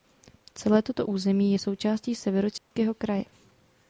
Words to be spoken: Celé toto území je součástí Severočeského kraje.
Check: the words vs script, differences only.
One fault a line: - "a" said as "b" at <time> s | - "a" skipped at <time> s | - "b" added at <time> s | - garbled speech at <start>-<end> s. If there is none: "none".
none